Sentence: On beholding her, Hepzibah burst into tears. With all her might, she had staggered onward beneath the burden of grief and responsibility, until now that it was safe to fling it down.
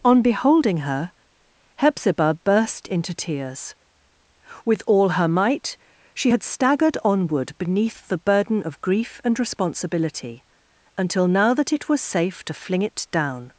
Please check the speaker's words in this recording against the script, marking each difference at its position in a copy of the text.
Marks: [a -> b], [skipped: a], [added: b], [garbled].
On beholding her, Hepzibah burst into tears. With all her might, she had staggered onward beneath the burden of grief and responsibility, until now that it was safe to fling it down.